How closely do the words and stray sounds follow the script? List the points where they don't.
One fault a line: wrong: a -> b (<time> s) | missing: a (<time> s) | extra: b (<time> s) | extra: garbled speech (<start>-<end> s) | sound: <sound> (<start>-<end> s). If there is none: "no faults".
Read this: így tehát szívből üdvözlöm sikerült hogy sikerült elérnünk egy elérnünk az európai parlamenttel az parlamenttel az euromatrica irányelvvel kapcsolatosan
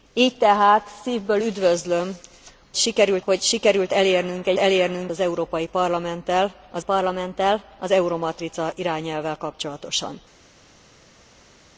no faults